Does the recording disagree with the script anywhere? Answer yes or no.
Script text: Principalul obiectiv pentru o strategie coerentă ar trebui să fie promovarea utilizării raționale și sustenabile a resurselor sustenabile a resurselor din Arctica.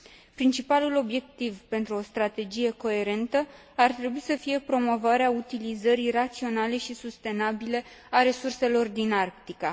yes